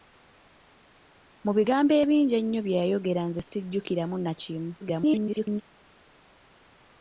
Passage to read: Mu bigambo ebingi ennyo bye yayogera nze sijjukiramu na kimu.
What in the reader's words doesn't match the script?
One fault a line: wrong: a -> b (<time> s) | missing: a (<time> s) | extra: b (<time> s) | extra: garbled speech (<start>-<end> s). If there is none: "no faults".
extra: garbled speech (4.8-5.6 s)